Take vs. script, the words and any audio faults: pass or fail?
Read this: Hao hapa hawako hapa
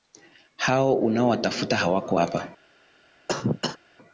fail